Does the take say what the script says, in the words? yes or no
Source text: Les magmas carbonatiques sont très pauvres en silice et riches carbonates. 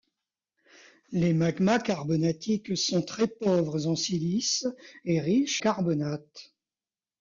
yes